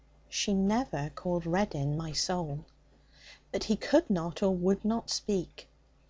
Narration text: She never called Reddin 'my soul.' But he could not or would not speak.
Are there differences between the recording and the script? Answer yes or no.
no